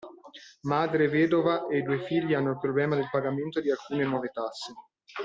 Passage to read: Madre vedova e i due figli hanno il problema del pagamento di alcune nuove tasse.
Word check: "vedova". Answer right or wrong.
right